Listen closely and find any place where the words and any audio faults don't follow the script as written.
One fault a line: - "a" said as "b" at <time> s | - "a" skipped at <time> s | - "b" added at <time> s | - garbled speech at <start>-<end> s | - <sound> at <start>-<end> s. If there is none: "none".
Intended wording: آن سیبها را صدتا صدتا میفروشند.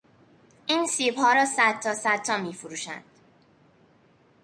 - "آن" said as "این" at 0.7 s